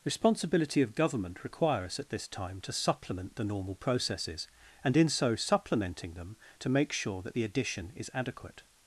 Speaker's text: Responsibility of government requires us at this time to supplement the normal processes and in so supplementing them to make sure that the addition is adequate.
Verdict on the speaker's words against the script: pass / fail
fail